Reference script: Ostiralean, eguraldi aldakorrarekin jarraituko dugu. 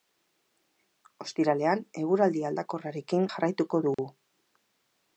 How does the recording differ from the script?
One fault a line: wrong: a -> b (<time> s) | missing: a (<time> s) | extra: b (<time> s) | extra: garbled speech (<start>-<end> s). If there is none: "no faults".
no faults